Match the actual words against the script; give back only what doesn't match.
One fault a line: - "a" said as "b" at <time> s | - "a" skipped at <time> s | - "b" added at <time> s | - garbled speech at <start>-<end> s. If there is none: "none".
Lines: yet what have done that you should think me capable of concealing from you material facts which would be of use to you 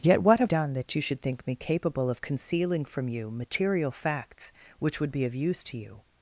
none